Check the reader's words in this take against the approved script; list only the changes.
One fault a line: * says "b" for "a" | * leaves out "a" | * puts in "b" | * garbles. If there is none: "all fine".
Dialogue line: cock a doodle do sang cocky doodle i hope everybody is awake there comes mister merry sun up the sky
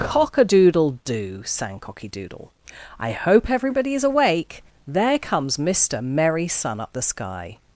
all fine